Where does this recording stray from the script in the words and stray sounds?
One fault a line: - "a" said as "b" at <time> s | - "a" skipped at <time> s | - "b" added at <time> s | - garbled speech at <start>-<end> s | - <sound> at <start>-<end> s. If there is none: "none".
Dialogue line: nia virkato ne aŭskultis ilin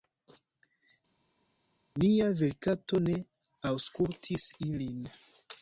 none